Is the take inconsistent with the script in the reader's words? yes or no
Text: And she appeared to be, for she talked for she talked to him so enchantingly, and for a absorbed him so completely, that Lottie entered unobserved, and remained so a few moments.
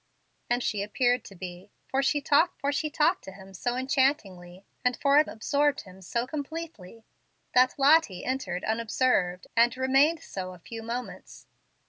no